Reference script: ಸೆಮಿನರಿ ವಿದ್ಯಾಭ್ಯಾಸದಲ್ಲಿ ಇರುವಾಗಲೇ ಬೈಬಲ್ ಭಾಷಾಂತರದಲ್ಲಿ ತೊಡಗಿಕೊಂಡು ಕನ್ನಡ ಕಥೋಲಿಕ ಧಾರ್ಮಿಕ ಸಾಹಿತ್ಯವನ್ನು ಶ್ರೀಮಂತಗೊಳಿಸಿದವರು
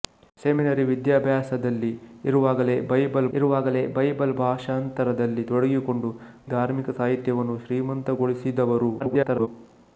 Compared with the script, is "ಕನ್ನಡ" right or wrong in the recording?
wrong